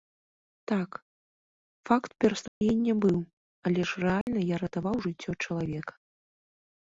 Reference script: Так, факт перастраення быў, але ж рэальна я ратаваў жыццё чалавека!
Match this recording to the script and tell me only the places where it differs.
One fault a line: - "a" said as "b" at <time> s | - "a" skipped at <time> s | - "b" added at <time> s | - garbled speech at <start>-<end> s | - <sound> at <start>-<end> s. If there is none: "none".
- dropout at 2.5-2.6 s
- dropout at 4.2-4.3 s